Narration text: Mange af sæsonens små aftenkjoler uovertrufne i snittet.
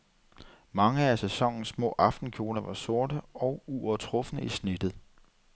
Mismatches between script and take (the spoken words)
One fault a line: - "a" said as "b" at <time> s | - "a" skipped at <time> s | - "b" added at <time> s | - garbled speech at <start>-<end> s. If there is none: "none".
- "var sorte og" added at 2.6 s